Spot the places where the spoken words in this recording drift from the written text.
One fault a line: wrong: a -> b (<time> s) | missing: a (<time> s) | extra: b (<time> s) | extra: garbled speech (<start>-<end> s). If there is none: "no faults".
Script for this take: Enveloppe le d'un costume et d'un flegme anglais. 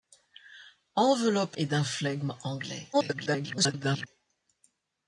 missing: le d'un costume (1.6 s)
extra: garbled speech (2.9-4.1 s)